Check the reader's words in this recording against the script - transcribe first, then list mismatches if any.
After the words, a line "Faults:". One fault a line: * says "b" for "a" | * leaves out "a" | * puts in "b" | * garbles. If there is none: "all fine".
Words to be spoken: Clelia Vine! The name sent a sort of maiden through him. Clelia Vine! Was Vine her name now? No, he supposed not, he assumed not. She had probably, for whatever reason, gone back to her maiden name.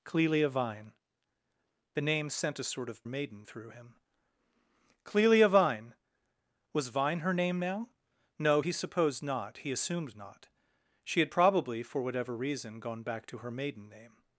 Clelia Vine! The name sent a sort of maiden through him. Clelia Vine! Was Vine her name now? No, he supposed not, he assumed not. She had probably, for whatever reason, gone back to her maiden name.
Faults:
all fine